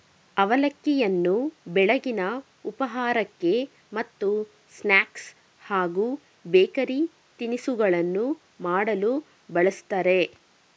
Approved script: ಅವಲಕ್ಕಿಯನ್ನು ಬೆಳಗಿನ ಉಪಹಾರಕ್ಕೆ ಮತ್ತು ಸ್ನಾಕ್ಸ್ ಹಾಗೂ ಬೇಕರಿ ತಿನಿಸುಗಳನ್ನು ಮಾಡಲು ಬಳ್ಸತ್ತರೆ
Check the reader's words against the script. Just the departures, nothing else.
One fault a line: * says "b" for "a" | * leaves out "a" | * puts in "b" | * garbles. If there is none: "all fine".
all fine